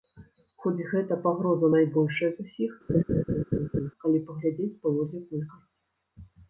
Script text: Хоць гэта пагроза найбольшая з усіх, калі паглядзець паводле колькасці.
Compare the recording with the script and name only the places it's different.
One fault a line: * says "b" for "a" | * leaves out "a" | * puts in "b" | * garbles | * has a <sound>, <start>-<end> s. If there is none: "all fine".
* has a laugh, 2.9-3.9 s